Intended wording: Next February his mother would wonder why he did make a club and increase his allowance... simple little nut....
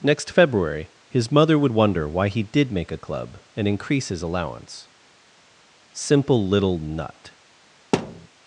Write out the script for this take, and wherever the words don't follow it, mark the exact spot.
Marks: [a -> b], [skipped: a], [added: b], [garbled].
Next February his mother would wonder why he did make a club and increase his allowance... simple little nut....